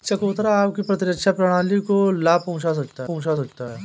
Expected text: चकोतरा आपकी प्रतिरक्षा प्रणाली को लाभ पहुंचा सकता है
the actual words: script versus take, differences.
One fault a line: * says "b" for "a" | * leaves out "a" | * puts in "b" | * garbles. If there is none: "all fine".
* puts in "पहुंचा सकता"